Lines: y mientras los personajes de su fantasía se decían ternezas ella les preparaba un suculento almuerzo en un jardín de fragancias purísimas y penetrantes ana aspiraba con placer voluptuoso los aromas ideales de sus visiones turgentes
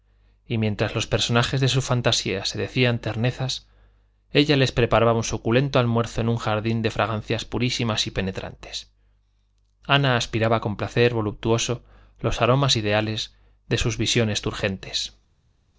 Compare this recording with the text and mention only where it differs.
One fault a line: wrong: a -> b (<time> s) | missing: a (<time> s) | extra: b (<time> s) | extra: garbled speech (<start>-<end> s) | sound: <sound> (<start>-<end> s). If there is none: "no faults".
no faults